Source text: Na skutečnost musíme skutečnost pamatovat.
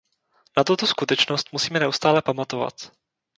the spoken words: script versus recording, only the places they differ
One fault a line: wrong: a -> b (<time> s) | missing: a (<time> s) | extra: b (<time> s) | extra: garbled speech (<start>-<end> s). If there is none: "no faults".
extra: tuto (0.6 s)
wrong: skutečnost -> neustále (1.8 s)